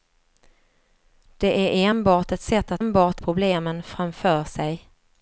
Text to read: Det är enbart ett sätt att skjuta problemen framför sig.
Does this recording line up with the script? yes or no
no